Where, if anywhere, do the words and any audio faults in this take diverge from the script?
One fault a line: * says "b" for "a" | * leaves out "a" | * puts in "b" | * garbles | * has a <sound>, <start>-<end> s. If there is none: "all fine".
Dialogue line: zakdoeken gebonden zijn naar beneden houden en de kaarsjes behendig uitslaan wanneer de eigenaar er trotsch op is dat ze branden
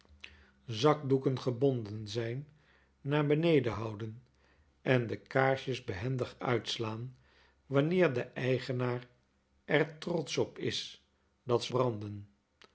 all fine